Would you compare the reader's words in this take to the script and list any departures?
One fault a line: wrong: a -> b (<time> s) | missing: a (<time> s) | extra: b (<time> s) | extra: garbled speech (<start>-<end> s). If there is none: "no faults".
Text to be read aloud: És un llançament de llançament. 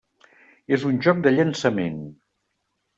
wrong: llançament -> joc (1.1 s)